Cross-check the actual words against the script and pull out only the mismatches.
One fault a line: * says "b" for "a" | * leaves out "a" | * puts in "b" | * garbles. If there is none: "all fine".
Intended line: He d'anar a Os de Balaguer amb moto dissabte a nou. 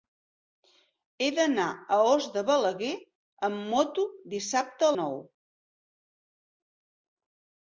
all fine